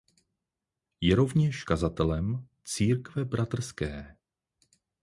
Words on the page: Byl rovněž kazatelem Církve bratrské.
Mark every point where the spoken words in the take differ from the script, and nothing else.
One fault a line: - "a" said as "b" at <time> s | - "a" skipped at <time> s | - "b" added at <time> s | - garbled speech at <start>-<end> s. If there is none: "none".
- "Byl" said as "Je" at 1.0 s